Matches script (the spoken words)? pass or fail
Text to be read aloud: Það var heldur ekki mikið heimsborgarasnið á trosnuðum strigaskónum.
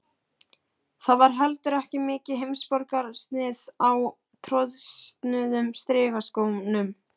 pass